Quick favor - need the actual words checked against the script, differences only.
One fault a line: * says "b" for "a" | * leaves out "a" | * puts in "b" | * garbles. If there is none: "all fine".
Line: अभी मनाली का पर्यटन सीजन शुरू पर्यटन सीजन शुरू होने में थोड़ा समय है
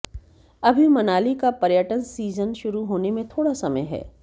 * leaves out "पर्यटन सीजन शुरू"